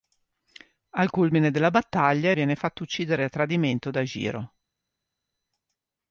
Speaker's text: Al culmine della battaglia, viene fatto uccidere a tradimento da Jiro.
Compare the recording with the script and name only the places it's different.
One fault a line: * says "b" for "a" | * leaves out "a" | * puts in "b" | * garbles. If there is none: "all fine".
all fine